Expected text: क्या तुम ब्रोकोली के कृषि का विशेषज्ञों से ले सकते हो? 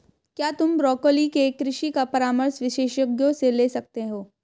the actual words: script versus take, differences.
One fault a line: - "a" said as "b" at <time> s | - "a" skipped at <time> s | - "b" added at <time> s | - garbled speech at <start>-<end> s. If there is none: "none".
- "परामर्श" added at 2.1 s